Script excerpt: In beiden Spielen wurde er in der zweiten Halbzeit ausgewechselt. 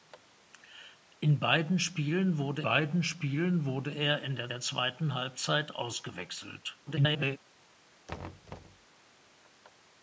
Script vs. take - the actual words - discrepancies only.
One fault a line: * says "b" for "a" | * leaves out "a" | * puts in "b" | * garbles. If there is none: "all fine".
* puts in "beiden Spielen wurde"
* puts in "der"
* garbles